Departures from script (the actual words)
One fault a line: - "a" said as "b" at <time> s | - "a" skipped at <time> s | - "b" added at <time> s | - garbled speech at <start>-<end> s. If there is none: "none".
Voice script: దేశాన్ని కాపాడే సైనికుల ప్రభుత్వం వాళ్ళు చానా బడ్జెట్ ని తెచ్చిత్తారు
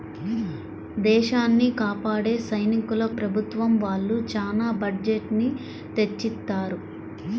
none